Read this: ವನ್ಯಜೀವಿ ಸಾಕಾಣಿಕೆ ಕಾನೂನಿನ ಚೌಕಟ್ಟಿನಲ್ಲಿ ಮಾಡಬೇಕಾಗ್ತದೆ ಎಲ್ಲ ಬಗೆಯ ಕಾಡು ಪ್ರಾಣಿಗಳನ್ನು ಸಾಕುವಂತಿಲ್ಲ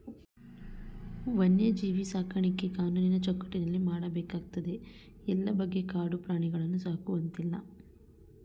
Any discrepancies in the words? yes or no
no